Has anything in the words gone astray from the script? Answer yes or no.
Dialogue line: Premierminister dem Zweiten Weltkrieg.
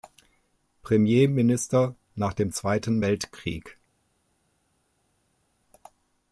yes